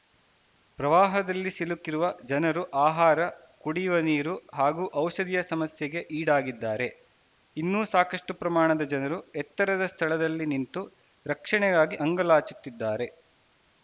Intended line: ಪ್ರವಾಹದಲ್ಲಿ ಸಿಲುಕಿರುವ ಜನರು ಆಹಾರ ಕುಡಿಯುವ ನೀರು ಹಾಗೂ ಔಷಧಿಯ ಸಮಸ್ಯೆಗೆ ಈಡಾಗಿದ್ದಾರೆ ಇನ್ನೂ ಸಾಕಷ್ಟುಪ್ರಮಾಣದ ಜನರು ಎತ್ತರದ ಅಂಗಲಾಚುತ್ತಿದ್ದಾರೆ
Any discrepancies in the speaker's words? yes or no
yes